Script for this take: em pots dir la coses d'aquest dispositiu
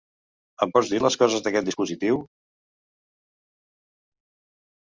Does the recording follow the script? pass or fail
fail